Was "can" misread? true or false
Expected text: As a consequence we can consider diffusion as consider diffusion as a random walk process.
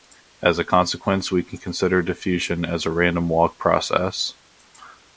false